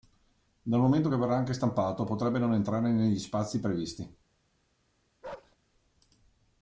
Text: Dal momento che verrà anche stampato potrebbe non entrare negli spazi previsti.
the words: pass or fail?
pass